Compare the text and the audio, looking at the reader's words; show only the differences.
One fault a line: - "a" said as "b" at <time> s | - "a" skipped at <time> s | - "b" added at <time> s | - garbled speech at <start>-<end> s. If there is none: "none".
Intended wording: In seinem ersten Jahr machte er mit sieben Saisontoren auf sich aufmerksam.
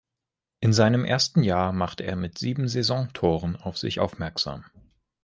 none